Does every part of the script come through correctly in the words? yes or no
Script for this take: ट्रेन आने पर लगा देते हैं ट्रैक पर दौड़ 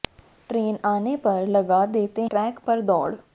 no